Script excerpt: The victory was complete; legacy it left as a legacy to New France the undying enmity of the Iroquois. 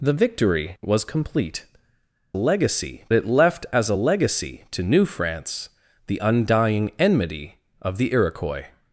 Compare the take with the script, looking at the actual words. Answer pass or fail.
pass